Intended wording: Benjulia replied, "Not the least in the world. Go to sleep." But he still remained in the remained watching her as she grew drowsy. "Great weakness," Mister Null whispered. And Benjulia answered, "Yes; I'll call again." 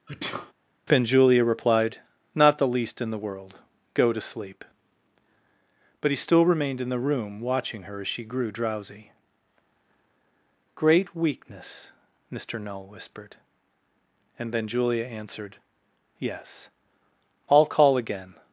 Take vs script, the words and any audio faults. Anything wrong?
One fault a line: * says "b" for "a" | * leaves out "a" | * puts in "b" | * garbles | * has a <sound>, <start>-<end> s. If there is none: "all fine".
* has a sneeze, 0.1-0.5 s
* says "room" for "remained"